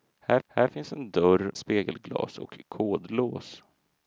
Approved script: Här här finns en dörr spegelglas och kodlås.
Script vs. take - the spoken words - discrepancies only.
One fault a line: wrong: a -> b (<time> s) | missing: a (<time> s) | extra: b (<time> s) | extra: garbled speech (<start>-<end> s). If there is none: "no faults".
no faults